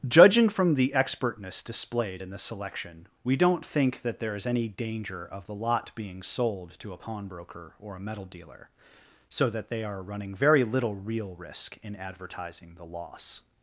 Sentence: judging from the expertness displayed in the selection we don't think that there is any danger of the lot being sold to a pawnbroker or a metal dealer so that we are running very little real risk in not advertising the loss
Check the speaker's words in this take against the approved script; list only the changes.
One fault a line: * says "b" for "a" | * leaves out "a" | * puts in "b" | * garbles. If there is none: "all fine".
* says "they" for "we"
* leaves out "not"